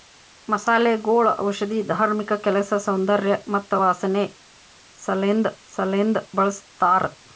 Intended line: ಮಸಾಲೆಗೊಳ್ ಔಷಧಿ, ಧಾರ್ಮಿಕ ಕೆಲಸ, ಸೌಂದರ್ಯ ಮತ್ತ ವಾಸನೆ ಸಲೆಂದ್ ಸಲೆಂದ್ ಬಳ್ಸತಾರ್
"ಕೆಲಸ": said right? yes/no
yes